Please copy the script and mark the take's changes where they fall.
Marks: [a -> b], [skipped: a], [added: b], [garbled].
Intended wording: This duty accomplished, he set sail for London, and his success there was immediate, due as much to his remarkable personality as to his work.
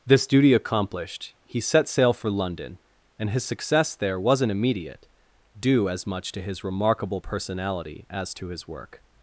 This duty accomplished, he set sail for London, and his success there [was -> wasn't] immediate, due as much to his remarkable personality as to his work.